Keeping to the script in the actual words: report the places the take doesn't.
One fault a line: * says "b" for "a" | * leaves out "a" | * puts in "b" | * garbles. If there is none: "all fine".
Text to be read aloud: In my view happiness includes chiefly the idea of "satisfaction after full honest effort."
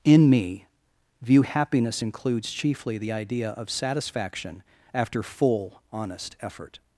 * says "me" for "my"